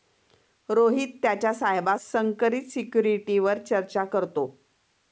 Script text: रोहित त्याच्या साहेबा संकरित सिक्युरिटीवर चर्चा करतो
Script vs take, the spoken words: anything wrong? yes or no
no